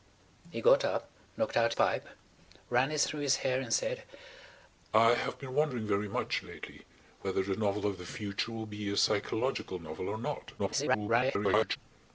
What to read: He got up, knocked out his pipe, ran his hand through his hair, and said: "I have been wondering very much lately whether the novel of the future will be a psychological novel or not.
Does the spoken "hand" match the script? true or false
false